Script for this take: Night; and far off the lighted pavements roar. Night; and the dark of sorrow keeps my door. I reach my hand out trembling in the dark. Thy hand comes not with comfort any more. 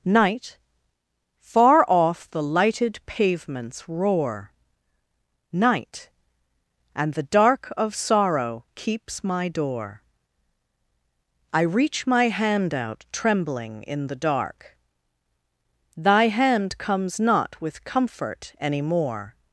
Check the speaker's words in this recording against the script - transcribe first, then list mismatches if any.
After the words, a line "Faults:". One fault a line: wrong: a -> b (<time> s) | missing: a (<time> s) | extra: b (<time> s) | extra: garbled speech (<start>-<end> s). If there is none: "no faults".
Night; far off the lighted pavements roar. Night; and the dark of sorrow keeps my door. I reach my hand out trembling in the dark. Thy hand comes not with comfort any more.
Faults:
missing: and (0.6 s)